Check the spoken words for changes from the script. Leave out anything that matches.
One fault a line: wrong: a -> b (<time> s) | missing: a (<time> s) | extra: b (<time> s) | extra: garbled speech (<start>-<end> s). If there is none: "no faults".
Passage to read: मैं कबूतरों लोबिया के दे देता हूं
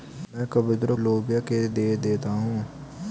no faults